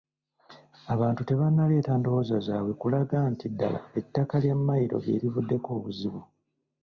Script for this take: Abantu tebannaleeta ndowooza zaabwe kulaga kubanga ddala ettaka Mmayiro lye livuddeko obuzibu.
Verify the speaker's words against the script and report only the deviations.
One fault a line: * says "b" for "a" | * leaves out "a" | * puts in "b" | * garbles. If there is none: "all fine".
* says "nti" for "kubanga"
* puts in "lya"